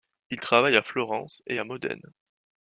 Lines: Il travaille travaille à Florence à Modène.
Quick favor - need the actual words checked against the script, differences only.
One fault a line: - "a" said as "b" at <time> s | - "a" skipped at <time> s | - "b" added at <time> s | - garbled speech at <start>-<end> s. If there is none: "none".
- "travaille" skipped at 0.8 s
- "et" added at 1.4 s